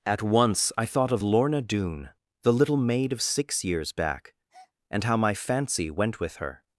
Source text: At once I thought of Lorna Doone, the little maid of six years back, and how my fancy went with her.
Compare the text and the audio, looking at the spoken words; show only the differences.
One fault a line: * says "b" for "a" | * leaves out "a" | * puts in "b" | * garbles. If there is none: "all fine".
all fine